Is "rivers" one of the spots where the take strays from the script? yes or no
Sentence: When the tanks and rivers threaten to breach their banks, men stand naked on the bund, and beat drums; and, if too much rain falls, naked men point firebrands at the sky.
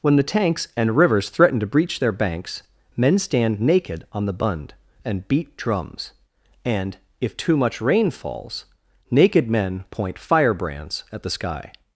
no